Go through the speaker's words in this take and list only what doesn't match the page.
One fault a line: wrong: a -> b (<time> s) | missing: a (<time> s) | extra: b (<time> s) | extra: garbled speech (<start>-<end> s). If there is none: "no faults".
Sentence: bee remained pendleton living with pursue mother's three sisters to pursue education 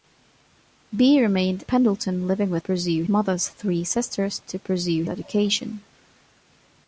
no faults